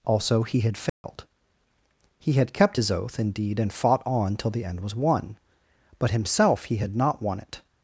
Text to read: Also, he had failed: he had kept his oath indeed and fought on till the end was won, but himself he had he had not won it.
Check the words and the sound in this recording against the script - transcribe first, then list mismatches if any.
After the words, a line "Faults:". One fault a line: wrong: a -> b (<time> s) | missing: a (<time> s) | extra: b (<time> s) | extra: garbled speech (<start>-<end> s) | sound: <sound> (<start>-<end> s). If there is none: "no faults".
Also, he had failed: he had kept his oath indeed and fought on till the end was won, but himself he had not won it.
Faults:
sound: dropout (0.9-1.0 s)
missing: he had (7.0 s)